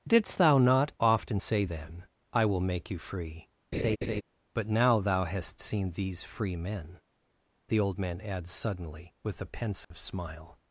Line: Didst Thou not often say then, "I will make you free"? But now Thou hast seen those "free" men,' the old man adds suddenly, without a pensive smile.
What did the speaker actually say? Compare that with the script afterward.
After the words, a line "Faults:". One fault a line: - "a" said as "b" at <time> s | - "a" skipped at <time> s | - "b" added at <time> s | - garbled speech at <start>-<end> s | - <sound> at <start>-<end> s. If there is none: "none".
Didst Thou not often say then, "I will make you free"? But now Thou hast seen these "free" men,' the old man adds suddenly, with a pensive smile.
Faults:
- laugh at 3.7-4.2 s
- "those" said as "these" at 5.9 s
- "without" said as "with" at 9.2 s
- dropout at 9.8-9.9 s